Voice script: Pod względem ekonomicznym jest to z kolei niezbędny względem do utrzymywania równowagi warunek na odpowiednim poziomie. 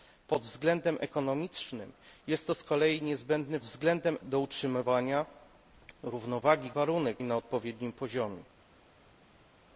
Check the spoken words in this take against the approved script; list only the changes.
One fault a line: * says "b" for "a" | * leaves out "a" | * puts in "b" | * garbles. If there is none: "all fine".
all fine